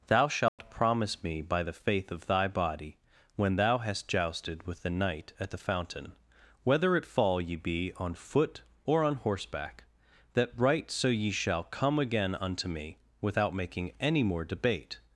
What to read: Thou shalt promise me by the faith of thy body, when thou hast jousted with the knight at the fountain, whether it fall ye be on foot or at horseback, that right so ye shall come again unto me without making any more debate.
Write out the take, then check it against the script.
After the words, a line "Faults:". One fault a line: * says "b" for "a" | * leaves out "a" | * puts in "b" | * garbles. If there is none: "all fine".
Thou shalt promise me by the faith of thy body, when thou hast jousted with the knight at the fountain, whether it fall ye be on foot or on horseback, that right so ye shall come again unto me without making any more debate.
Faults:
* says "on" for "at"